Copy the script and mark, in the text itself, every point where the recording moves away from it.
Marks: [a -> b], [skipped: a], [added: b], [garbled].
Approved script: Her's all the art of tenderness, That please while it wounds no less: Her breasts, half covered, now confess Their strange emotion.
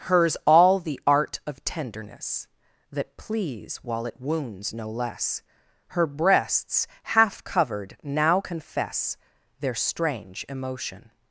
Her's all the art of tenderness, That please while it wounds no less: Her breasts, half covered, now confess Their strange emotion.